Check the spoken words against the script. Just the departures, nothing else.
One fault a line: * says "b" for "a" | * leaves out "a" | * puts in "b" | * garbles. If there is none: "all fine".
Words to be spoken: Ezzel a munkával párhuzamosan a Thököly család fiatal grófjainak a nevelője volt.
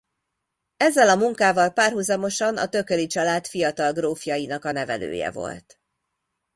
all fine